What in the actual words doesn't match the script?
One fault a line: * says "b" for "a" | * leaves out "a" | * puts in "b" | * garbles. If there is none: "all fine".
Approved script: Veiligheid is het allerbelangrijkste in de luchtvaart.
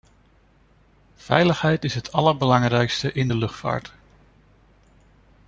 all fine